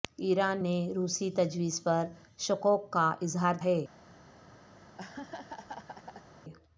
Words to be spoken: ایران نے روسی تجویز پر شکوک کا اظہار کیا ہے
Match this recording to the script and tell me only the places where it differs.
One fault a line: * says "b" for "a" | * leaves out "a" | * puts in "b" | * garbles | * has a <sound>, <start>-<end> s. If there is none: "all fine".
* leaves out "کیا"
* has a laugh, 4.8-6.3 s